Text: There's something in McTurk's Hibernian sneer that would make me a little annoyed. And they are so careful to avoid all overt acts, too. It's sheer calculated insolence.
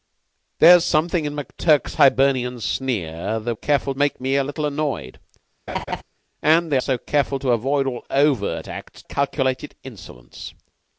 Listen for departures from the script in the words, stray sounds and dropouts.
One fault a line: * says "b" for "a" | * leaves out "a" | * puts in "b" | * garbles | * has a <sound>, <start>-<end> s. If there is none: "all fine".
* says "careful" for "would"
* has a laugh, 5.7-6.0 s
* leaves out "are"
* leaves out "too It's sheer"